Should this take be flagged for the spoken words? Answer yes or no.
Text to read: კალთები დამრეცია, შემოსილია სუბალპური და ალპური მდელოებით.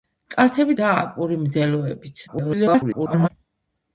yes